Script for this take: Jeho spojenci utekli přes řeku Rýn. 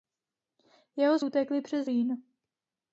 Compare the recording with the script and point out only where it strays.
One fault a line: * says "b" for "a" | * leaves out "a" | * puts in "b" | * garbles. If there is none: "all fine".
* leaves out "spojenci"
* leaves out "řeku"